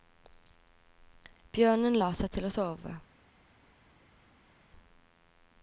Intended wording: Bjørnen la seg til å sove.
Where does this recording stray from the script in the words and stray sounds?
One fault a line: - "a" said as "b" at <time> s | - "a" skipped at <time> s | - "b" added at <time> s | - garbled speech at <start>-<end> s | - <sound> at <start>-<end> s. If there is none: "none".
none